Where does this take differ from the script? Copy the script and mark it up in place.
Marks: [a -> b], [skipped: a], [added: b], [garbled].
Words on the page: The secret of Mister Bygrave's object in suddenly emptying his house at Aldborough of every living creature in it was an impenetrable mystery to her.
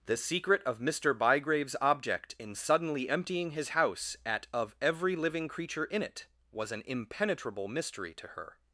The secret of Mister Bygrave's object in suddenly emptying his house at [skipped: Aldborough] of every living creature in it was an impenetrable mystery to her.